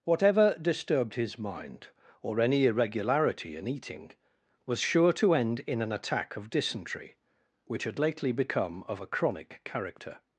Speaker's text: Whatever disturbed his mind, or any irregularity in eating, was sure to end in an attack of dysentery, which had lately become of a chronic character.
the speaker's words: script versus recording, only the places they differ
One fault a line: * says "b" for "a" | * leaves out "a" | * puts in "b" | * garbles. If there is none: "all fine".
all fine